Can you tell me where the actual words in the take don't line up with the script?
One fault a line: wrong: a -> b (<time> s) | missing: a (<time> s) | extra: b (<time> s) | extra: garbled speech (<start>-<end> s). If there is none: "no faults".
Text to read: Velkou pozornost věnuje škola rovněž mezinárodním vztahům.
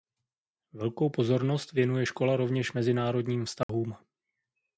no faults